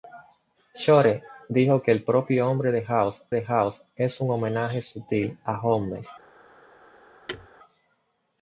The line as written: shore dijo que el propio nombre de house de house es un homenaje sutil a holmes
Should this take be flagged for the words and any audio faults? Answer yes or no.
yes